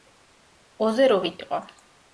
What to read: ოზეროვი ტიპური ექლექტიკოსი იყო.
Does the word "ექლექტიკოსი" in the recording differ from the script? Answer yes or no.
yes